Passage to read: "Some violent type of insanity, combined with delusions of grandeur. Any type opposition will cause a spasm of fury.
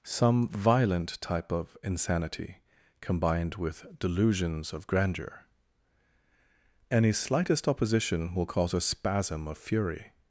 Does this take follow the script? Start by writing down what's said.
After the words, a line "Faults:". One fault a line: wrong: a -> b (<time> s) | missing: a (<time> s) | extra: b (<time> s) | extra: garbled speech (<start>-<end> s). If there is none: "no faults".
"Some violent type of insanity, combined with delusions of grandeur. Any slightest opposition will cause a spasm of fury.
Faults:
wrong: type -> slightest (7.1 s)